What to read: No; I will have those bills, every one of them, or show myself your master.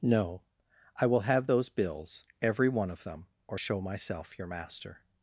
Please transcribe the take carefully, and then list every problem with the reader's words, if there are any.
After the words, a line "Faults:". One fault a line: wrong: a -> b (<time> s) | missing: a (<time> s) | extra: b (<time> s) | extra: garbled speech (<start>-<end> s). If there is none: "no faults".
No; I will have those bills, every one of them, or show myself your master.
Faults:
no faults